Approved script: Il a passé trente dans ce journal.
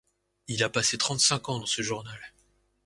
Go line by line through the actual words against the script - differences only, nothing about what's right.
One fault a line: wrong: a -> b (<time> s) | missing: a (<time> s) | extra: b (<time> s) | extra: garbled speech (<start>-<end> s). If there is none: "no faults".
extra: cinq ans (1.2 s)